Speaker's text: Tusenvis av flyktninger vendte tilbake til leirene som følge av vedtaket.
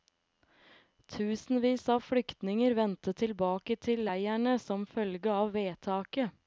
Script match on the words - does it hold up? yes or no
yes